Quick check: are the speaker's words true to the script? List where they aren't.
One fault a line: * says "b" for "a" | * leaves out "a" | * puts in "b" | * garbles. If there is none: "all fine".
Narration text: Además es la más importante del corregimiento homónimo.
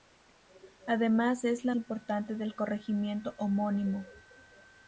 * leaves out "más"